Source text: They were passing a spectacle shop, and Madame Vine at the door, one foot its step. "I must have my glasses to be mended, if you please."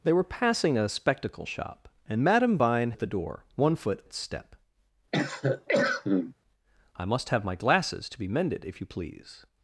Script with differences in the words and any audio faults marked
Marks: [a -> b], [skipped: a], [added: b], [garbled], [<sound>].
They were passing a spectacle shop, and Madame Vine at the door, one foot its step. [cough] "I must have my glasses to be mended, if you please."